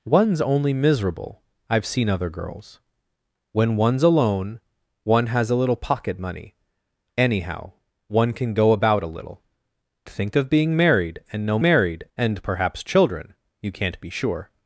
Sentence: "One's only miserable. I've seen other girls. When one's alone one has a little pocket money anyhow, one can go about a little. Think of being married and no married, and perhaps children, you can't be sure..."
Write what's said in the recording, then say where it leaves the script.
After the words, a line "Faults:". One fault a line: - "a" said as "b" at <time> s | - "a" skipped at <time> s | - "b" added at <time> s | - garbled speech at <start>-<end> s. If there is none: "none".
"One's only miserable. I've seen other girls. When one's alone one has a little pocket money anyhow, one can go about a little. Think of being married and no married, and perhaps children, you can't be sure..."
Faults:
none